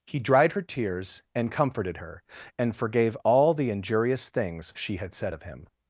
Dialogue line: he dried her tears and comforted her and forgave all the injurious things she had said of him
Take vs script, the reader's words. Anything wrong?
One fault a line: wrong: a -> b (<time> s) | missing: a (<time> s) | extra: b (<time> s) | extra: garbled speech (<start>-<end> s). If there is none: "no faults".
no faults